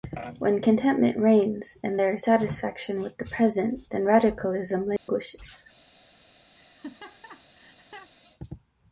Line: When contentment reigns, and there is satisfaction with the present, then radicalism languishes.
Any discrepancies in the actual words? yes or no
no